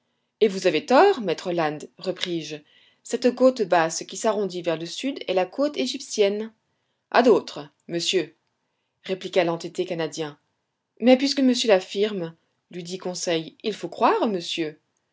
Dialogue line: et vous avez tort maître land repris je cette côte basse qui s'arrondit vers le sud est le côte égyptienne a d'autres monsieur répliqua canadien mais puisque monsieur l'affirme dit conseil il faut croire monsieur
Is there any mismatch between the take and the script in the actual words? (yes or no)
yes